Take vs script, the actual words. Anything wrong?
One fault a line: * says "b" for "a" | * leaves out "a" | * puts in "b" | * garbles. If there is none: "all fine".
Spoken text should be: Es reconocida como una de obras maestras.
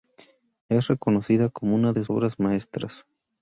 all fine